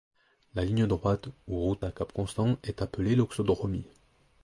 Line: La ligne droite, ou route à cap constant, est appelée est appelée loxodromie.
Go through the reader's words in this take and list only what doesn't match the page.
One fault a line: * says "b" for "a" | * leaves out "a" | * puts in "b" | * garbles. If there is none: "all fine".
* leaves out "est appelée"